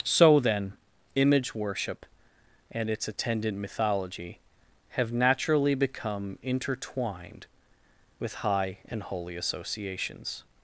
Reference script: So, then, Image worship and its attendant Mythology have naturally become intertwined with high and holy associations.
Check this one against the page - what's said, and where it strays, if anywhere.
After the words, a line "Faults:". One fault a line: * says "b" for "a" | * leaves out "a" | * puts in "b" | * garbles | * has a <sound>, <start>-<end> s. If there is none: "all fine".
So, then, Image worship and its attendant Mythology have naturally become intertwined with high and holy associations.
Faults:
all fine